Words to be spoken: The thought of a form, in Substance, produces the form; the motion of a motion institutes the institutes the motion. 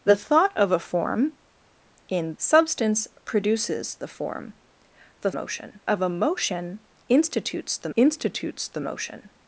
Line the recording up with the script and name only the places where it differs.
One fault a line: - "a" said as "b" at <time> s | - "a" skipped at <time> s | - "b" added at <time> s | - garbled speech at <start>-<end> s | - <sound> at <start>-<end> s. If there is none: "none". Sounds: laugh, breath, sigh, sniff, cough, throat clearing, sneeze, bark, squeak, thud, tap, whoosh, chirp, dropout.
none